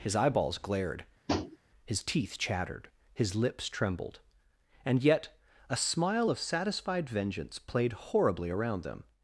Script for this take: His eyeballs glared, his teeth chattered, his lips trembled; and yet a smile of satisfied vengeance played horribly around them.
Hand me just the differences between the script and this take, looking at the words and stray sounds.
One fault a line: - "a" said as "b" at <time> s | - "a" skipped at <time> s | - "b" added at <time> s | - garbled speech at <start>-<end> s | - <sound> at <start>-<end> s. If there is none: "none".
- tap at 1.3-1.6 s